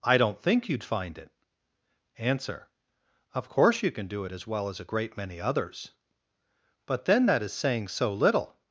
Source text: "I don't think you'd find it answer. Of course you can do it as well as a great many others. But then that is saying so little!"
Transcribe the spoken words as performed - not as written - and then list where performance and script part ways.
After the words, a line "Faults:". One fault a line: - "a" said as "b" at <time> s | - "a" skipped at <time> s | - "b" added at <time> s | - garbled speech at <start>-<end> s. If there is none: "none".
"I don't think you'd find it answer. Of course you can do it as well as a great many others. But then that is saying so little!"
Faults:
none